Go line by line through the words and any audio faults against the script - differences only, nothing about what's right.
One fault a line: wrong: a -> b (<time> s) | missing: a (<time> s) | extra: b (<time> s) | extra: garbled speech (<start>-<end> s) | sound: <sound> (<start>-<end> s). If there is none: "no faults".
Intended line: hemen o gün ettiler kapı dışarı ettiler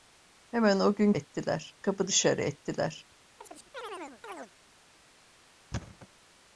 sound: chirp (3.4-4.5 s)
sound: thud (5.7-6.1 s)